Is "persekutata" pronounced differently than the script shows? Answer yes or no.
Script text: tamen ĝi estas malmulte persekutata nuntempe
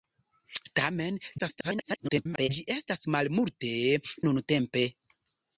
yes